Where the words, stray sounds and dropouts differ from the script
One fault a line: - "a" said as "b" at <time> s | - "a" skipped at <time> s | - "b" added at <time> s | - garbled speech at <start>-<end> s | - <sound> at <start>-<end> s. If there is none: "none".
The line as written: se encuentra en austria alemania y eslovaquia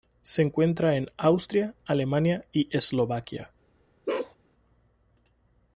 - bark at 4.1-4.4 s